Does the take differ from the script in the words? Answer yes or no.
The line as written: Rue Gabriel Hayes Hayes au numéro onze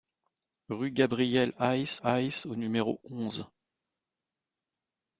no